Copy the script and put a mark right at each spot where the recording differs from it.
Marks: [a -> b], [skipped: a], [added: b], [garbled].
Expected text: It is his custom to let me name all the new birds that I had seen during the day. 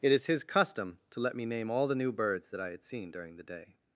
It is his custom to let me name all the new birds that I had seen during the day.